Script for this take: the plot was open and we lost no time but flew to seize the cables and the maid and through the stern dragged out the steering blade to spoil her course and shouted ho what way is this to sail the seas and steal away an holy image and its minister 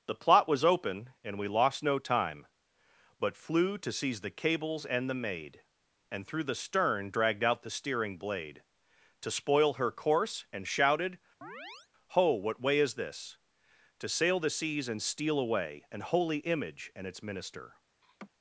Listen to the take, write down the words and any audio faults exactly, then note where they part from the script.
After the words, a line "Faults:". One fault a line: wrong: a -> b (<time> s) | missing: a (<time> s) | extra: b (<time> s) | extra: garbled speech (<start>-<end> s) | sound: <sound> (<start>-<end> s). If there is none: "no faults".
the plot was open and we lost no time but flew to seize the cables and the maid and through the stern dragged out the steering blade to spoil her course and shouted ho what way is this to sail the seas and steal away an holy image and its minister
Faults:
sound: chirp (11.4-11.9 s)
sound: laugh (18.0-18.3 s)